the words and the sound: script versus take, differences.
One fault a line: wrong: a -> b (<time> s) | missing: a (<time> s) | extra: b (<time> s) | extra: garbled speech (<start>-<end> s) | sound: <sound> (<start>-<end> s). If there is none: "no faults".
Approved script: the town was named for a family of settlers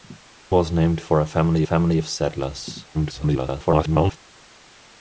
missing: town (0.2 s)
extra: family (1.6 s)
extra: garbled speech (2.9-4.2 s)